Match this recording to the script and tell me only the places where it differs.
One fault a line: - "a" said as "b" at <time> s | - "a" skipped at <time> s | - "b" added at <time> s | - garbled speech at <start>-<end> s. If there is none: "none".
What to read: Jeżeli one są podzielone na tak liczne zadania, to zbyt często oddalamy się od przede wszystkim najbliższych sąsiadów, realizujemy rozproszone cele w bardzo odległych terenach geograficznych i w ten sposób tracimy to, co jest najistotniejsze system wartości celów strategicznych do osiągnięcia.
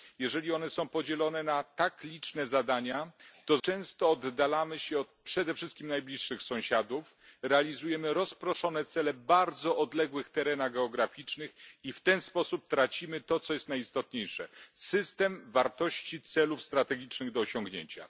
- "zbyt" skipped at 3.6 s